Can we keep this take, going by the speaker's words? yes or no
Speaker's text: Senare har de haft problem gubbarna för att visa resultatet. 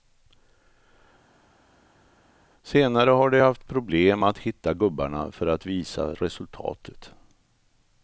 no